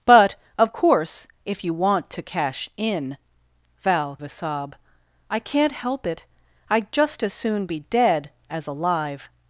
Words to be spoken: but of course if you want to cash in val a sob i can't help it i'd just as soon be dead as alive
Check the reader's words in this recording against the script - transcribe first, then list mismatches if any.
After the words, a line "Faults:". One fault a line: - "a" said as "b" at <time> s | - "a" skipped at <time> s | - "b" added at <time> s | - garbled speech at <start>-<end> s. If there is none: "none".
but of course if you want to cash in val a sob i can't help it i'd just as soon be dead as alive
Faults:
none